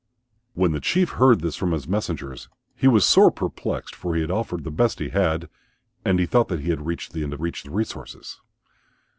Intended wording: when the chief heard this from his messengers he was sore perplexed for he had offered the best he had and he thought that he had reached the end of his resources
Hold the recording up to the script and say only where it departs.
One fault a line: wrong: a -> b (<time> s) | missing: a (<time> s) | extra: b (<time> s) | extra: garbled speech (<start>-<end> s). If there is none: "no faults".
wrong: his -> reached (7.4 s)